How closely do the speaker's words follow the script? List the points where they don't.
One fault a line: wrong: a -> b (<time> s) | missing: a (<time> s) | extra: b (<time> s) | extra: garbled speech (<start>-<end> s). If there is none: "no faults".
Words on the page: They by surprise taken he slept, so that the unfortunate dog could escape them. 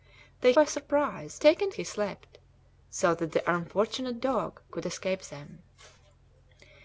no faults